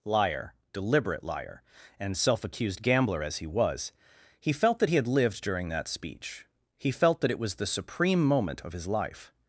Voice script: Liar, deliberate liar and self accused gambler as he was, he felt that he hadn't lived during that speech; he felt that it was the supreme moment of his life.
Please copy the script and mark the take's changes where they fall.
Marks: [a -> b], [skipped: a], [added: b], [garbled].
Liar, deliberate liar and self accused gambler as he was, he felt that he [hadn't -> had] lived during that speech; he felt that it was the supreme moment of his life.